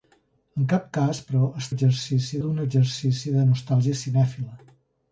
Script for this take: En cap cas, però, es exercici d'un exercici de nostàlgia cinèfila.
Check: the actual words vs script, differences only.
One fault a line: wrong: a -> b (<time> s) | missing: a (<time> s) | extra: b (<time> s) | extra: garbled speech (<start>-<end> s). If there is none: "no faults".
no faults